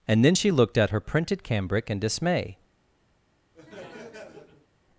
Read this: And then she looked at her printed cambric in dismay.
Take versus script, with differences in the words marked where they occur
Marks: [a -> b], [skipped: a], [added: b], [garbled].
And then she looked at her printed cambric in dismay.